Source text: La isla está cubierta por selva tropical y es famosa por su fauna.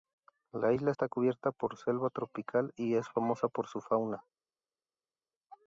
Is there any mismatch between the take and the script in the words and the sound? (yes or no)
no